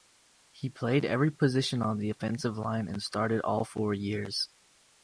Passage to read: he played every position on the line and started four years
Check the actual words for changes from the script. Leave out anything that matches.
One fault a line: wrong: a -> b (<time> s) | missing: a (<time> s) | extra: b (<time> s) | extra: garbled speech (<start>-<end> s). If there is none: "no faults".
extra: offensive (2.1 s)
extra: all (3.4 s)